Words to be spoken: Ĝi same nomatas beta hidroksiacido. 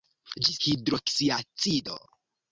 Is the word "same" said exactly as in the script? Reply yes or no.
no